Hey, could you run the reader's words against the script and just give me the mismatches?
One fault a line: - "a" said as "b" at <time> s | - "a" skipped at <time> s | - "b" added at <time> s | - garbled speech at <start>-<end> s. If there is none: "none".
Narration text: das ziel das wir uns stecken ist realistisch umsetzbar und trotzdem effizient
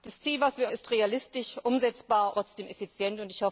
- "uns stecken" skipped at 0.7 s
- "und" skipped at 2.3 s